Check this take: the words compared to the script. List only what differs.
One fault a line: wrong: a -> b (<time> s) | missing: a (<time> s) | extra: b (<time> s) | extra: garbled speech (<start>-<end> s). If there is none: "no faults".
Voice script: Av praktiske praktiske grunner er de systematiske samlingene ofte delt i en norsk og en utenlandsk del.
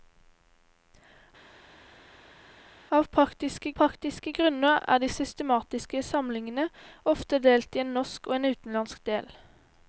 no faults